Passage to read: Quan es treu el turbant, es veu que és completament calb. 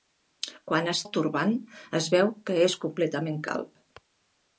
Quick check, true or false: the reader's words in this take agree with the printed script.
false